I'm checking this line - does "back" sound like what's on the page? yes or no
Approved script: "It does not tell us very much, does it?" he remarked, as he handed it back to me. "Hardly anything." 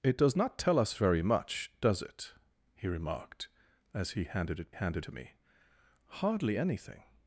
no